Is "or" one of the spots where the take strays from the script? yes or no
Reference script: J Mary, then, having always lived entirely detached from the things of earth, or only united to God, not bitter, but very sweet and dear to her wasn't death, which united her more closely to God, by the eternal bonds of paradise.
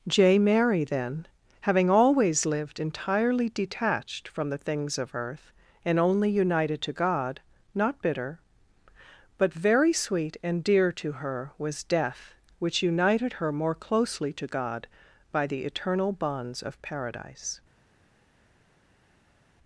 yes